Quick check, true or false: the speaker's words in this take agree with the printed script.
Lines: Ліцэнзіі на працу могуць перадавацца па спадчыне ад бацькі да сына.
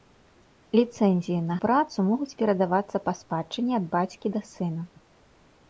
true